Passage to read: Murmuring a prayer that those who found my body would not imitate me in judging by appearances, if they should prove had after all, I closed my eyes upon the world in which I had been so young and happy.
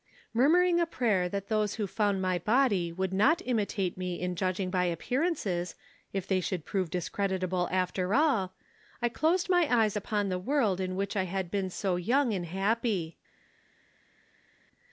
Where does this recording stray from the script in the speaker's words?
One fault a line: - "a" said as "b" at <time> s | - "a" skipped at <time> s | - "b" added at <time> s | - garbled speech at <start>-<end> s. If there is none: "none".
- "had" said as "discreditable" at 6.9 s